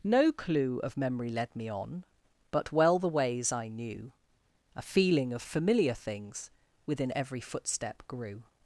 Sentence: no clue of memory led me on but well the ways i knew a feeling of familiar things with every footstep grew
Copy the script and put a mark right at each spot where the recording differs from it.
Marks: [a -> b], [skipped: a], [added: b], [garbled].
no clue of memory led me on but well the ways i knew a feeling of familiar things [with -> within] every footstep grew